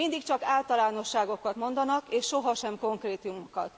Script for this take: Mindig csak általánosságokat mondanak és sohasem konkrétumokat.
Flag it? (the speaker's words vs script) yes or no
no